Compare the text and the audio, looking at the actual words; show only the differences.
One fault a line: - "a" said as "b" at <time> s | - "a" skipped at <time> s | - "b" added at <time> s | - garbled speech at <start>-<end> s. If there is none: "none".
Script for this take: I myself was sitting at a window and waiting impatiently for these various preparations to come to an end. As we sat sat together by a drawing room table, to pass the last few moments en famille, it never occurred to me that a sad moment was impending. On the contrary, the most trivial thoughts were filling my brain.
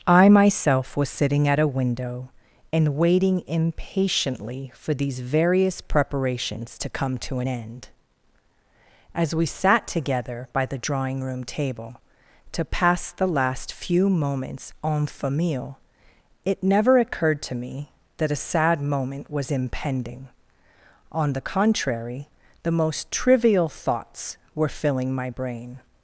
- "sat" skipped at 9.9 s
- "a" said as "the" at 10.7 s